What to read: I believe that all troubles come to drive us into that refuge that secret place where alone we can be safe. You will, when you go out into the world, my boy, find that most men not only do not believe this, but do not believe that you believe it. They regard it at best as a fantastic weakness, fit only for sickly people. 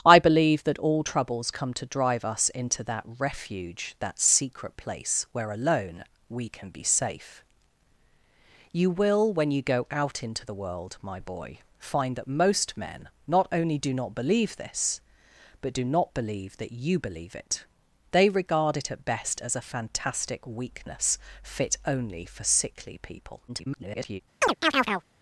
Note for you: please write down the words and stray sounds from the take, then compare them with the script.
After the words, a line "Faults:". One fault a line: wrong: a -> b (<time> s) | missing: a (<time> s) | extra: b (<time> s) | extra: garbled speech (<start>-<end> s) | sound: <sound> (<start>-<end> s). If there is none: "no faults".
I believe that all troubles come to drive us into that refuge that secret place where alone we can be safe. You will, when you go out into the world, my boy, find that most men not only do not believe this, but do not believe that you believe it. They regard it at best as a fantastic weakness, fit only for sickly people. [garbled]
Faults:
extra: garbled speech (23.5-24.2 s)
sound: chirp (24.4-25.0 s)